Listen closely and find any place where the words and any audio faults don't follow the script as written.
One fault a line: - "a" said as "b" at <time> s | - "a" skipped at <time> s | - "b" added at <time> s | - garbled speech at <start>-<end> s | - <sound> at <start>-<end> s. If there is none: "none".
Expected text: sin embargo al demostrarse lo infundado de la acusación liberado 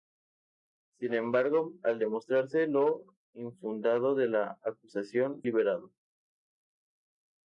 none